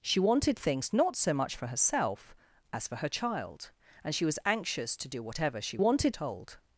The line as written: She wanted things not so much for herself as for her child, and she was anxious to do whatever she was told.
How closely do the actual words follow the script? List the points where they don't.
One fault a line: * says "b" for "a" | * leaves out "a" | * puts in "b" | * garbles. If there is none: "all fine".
* says "wanted" for "was"